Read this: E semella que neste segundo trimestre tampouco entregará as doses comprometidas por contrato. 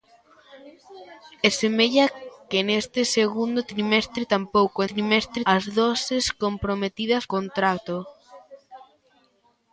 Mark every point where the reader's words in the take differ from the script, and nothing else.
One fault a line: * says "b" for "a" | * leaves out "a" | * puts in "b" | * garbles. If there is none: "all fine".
* says "trimestre" for "entregará"
* leaves out "por"